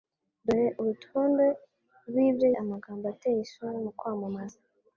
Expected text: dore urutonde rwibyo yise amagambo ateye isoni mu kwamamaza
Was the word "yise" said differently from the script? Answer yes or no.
yes